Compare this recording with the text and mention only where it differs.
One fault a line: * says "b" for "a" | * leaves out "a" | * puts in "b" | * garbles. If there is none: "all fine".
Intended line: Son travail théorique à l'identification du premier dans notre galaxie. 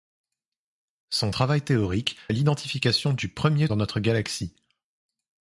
all fine